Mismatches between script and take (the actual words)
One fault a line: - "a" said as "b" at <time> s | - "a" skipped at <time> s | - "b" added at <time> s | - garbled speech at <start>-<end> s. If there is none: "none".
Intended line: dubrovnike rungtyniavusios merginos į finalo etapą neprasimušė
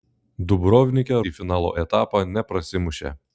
- "rungtyniavusios merginos" skipped at 1.2 s